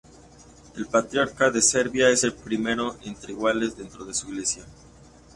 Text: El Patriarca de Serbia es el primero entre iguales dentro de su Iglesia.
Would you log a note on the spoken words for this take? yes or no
no